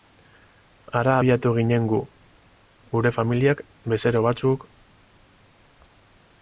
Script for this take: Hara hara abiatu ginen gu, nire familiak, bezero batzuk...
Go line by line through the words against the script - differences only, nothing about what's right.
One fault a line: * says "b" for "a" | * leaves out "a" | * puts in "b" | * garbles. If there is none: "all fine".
* leaves out "hara"
* says "gure" for "nire"